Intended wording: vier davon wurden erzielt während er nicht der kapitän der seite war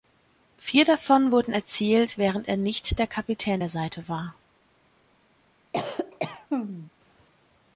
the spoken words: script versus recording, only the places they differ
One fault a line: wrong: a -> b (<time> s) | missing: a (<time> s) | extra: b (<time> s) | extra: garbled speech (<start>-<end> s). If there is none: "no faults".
no faults